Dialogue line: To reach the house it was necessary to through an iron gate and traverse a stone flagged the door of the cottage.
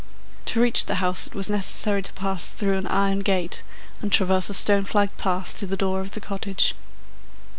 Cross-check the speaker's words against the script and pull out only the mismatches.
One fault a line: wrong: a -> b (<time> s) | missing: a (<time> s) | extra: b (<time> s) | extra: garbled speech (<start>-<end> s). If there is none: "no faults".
extra: pass (2.1 s)
extra: path to (5.2 s)